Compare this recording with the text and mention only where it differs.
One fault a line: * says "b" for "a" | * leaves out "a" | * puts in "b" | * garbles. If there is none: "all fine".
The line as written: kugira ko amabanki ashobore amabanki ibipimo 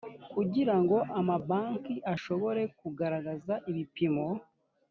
* says "ngo" for "ko"
* says "kugaragaza" for "amabanki"